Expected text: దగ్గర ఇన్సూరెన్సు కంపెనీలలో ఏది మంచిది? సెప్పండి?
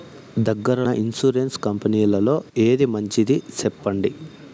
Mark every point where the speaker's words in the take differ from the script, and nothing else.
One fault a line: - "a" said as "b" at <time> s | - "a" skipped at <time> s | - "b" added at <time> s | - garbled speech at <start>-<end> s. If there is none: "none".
none